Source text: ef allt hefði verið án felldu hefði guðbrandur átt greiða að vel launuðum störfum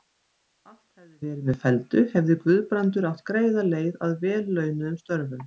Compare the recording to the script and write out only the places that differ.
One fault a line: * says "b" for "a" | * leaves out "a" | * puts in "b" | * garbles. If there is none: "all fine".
* says "með" for "án"
* puts in "leið"